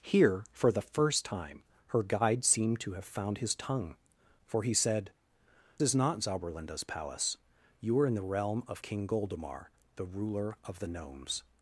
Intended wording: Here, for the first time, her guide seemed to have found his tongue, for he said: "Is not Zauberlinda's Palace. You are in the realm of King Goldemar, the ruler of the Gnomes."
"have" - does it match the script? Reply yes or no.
yes